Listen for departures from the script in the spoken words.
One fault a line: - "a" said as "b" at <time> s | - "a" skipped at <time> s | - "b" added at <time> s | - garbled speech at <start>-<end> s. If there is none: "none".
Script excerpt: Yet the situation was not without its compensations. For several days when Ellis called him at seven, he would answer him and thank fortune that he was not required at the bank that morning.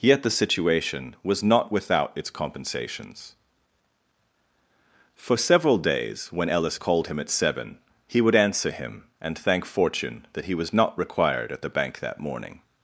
none